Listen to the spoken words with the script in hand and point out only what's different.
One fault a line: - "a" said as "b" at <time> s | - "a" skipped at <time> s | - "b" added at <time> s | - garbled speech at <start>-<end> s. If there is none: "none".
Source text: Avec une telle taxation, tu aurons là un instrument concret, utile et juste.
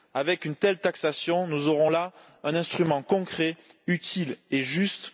- "tu" said as "nous" at 1.5 s